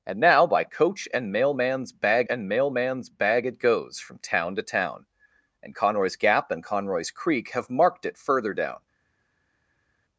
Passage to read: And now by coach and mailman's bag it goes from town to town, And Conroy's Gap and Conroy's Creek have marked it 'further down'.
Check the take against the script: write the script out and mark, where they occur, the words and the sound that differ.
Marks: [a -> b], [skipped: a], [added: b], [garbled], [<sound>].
And now by coach and mailman's bag [added: and mailman's bag] it goes from town to town, And Conroy's Gap and Conroy's Creek have marked it 'further down'.